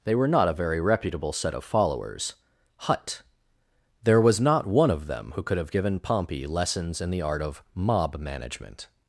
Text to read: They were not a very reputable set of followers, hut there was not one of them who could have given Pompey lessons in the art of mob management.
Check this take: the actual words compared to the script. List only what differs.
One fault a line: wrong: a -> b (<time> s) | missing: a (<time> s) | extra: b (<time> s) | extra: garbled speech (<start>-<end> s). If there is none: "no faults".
no faults